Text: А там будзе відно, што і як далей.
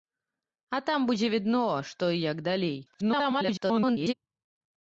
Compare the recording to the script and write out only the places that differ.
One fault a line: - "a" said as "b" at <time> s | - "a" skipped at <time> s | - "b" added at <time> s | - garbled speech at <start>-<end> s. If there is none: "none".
- garbled speech at 2.9-4.1 s